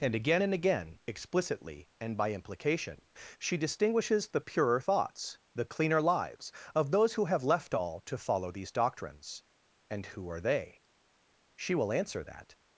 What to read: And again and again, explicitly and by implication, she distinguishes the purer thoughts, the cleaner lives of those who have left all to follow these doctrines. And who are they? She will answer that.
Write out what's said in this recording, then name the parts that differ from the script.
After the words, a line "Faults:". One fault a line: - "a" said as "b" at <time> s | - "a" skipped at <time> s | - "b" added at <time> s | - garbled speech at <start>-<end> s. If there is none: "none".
And again and again, explicitly and by implication, she distinguishes the purer thoughts, the cleaner lives of those who have left all to follow these doctrines. And who are they? She will answer that.
Faults:
none